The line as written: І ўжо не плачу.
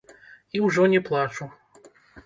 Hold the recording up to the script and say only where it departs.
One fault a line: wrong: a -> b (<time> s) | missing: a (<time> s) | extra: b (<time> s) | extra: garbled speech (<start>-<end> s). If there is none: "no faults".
no faults